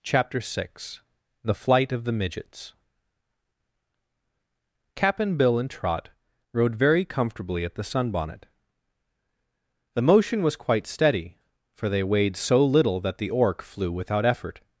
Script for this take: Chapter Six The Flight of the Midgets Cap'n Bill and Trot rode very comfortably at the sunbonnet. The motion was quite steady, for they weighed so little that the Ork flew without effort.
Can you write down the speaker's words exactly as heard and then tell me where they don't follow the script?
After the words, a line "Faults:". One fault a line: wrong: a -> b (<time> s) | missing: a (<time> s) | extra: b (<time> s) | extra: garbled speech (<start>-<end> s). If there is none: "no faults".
Chapter Six The Flight of the Midgets Cap'n Bill and Trot rode very comfortably at the sunbonnet. The motion was quite steady, for they weighed so little that the Ork flew without effort.
Faults:
no faults